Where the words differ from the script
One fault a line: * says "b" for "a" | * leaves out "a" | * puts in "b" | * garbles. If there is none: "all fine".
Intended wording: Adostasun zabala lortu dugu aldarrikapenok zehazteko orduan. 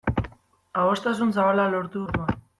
* leaves out "dugu aldarrikapenok zehazteko"